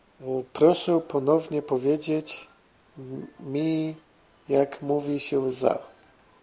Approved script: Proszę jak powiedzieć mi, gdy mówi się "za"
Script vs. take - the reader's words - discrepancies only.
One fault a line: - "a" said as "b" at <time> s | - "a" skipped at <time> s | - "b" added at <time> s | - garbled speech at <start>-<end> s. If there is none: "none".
- "jak" said as "ponownie" at 1.1 s
- "gdy" said as "jak" at 4.5 s